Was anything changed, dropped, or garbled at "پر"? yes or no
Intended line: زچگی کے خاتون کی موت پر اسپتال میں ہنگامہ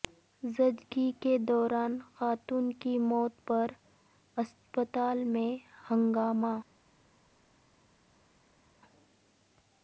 no